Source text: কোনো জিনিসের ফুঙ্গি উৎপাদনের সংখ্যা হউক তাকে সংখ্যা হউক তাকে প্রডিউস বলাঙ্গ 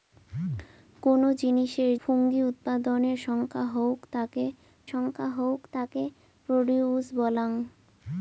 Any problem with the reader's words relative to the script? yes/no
no